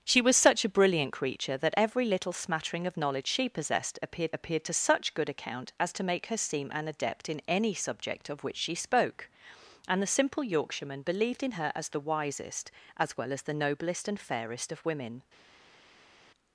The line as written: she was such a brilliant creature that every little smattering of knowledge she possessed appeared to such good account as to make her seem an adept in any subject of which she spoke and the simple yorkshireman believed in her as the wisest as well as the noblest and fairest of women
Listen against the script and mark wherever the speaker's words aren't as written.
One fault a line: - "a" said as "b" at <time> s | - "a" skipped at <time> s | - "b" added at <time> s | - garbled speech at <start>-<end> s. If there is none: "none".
- "appeared" added at 4.3 s